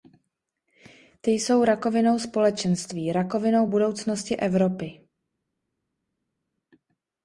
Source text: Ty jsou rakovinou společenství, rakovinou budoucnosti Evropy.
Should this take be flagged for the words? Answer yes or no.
no